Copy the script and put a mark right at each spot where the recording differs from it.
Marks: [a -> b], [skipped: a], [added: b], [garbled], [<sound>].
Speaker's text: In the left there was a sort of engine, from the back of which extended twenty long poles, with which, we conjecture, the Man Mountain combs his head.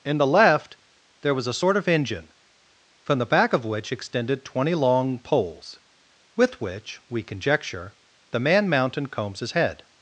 In the left there was a sort of engine, from the back of which extended twenty long poles, with which, we conjecture, the Man Mountain combs his head.